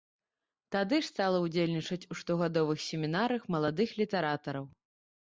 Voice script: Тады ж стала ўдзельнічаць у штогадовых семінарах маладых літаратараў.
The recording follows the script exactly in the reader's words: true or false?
true